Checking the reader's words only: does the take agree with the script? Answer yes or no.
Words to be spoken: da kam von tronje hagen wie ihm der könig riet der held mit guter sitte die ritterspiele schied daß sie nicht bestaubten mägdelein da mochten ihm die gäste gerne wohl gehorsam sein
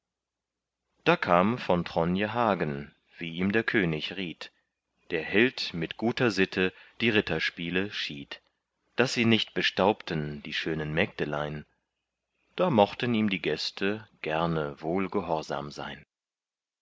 no